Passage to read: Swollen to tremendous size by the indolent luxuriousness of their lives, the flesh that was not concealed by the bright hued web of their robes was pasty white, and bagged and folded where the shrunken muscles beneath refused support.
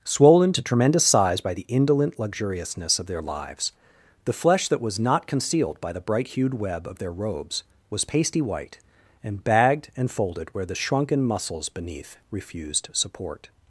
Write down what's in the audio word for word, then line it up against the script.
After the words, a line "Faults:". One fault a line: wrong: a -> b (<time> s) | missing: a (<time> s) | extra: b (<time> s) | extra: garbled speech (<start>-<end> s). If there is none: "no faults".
Swollen to tremendous size by the indolent luxuriousness of their lives, the flesh that was not concealed by the bright hued web of their robes was pasty white, and bagged and folded where the shrunken muscles beneath refused support.
Faults:
no faults